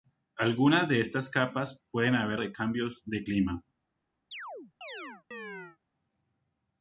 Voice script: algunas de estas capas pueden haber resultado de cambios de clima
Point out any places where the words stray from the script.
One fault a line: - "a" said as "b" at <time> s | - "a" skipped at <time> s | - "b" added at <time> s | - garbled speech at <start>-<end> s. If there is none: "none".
- "resultado" skipped at 2.4 s